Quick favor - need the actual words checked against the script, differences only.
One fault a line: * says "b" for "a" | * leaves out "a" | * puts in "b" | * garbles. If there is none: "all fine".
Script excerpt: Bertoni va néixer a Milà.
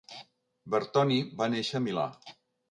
all fine